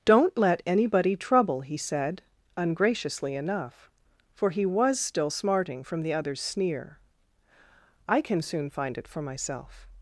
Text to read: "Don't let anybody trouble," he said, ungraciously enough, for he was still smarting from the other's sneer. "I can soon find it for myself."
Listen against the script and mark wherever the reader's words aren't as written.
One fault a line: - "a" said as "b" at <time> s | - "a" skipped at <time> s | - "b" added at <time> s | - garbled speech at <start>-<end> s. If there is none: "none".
none